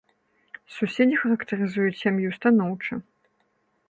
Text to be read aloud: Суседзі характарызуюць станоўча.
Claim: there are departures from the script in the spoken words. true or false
true